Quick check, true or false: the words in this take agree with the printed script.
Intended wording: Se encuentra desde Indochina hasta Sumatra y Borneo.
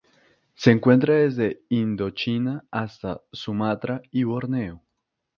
true